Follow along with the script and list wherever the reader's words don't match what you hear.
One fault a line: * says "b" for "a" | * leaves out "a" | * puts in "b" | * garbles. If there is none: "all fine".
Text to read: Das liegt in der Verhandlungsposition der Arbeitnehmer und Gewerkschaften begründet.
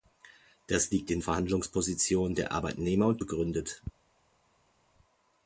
* leaves out "der"
* leaves out "Gewerkschaften"